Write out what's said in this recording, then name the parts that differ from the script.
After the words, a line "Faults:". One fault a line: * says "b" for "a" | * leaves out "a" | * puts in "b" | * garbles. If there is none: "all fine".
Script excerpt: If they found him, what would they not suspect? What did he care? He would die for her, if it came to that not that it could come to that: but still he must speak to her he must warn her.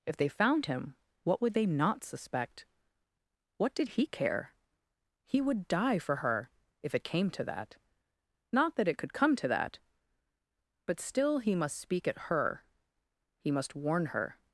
If they found him, what would they not suspect? What did he care? He would die for her, if it came to that not that it could come to that: but still he must speak at her he must warn her.
Faults:
* says "at" for "to"